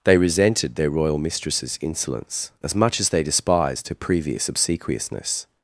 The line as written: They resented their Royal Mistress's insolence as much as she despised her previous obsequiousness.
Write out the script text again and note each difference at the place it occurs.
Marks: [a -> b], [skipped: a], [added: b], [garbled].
They resented their Royal Mistress's insolence as much as [she -> they] despised her previous obsequiousness.